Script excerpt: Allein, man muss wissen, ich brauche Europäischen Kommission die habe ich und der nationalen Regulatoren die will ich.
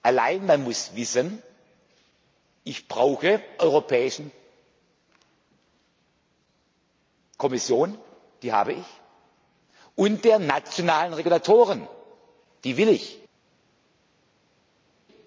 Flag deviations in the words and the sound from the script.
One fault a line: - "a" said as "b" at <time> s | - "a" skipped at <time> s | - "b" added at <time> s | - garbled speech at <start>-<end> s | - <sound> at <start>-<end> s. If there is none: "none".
none